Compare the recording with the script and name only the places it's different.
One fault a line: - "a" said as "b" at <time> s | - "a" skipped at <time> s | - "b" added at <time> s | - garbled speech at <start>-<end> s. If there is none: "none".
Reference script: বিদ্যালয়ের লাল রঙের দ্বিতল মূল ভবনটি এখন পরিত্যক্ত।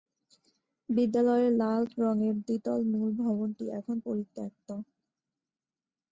none